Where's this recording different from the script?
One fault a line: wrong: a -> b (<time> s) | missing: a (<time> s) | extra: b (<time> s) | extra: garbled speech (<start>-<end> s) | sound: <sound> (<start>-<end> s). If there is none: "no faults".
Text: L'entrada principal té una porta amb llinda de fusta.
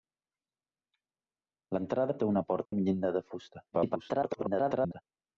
missing: principal (2.2 s)
sound: dropout (2.7-2.7 s)
extra: garbled speech (3.7-5.0 s)